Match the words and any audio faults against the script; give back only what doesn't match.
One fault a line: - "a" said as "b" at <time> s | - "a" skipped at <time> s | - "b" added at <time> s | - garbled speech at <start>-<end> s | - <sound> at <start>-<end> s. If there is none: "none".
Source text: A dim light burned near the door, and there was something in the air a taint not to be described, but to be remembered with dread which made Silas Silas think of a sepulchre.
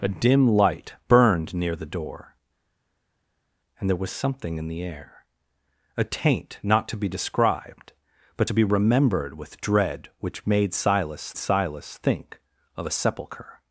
none